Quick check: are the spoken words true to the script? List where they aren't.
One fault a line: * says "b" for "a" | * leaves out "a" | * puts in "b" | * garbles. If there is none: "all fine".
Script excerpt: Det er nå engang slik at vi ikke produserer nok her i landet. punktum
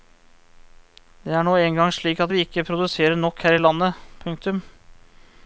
all fine